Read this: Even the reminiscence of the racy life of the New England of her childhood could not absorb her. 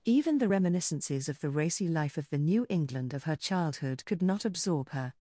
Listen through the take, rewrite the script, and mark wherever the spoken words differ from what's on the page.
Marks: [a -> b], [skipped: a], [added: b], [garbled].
Even the [reminiscence -> reminiscences] of the racy life of the New England of her childhood could not absorb her.